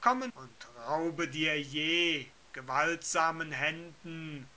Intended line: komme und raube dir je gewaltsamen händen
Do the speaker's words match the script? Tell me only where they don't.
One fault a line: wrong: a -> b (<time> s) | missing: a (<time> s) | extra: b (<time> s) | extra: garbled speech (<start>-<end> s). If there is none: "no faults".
no faults